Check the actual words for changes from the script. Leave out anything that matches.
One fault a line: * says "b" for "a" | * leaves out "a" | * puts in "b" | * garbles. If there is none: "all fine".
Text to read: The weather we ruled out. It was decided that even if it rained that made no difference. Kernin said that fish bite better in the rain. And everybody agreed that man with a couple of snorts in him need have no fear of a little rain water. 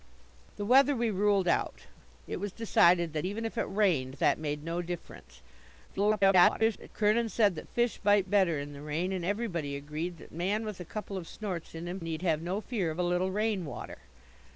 * garbles